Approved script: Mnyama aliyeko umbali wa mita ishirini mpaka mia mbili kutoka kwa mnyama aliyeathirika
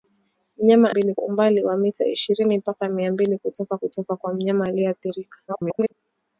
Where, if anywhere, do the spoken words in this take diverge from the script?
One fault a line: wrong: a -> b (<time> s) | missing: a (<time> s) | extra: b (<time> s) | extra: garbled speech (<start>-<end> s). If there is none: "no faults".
wrong: aliyeko -> mbili (0.9 s)
extra: kutoka (3.8 s)
extra: garbled speech (5.5-5.9 s)